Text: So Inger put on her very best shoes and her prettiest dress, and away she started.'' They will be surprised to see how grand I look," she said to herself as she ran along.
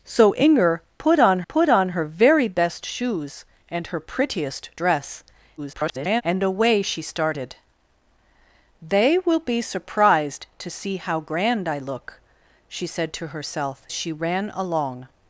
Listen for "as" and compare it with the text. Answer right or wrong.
wrong